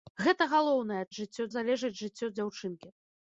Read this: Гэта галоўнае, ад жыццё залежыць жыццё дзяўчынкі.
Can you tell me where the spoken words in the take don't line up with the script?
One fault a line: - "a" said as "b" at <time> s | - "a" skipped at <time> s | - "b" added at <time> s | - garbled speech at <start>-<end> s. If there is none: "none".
none